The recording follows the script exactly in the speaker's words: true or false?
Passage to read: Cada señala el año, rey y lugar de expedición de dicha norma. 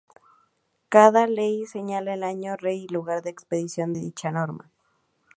false